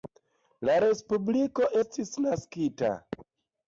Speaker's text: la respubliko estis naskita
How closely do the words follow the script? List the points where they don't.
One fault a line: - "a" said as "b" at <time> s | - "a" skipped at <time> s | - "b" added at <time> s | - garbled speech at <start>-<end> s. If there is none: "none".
none